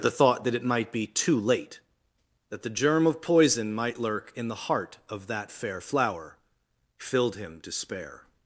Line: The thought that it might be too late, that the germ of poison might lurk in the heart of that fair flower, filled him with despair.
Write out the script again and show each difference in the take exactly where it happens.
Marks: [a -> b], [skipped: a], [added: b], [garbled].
The thought that it might be too late, that the germ of poison might lurk in the heart of that fair flower, filled him [skipped: with] despair.